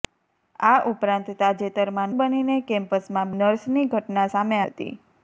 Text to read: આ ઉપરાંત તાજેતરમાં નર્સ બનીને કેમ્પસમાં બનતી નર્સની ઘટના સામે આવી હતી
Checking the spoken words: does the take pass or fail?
fail